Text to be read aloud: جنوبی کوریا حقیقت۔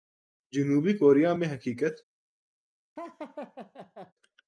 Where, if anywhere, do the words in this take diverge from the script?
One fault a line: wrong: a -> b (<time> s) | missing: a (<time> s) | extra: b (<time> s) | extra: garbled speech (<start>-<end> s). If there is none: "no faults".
extra: میں (1.3 s)